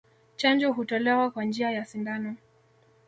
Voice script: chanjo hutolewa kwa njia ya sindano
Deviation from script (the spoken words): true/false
false